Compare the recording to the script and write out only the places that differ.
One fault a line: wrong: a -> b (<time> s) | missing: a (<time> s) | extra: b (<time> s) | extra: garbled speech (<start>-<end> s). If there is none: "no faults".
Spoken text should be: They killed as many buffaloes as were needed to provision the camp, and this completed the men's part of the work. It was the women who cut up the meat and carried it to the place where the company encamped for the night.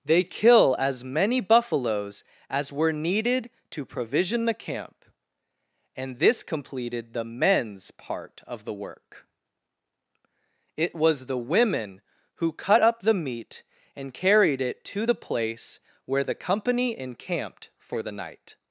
wrong: killed -> kill (0.2 s)